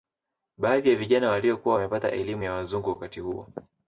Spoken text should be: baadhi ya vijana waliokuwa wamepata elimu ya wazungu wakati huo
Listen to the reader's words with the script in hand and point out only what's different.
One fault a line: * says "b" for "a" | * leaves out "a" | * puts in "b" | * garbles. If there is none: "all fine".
all fine